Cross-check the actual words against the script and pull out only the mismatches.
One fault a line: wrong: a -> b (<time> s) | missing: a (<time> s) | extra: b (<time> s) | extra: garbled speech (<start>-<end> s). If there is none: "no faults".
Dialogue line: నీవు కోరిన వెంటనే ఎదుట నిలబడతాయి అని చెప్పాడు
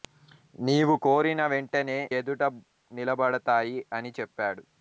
no faults